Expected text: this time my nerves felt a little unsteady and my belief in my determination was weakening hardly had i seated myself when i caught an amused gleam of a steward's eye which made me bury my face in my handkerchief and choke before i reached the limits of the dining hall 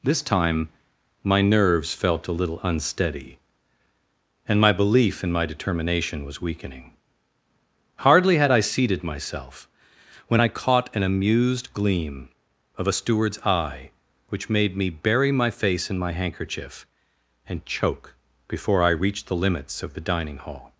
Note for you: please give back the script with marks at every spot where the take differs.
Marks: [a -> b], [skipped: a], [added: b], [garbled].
this time my nerves felt a little unsteady and my belief in my determination was weakening hardly had i seated myself when i caught an amused gleam of a steward's eye which made me bury my face in my handkerchief and choke before i reached the limits of the dining hall